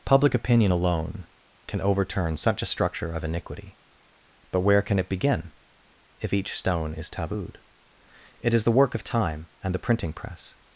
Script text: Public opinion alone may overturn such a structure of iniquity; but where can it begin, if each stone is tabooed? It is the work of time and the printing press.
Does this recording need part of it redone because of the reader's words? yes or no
yes